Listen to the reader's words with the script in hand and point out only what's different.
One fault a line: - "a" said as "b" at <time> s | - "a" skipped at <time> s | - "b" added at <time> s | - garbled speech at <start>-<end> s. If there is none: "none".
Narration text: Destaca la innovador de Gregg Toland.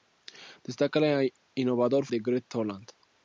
none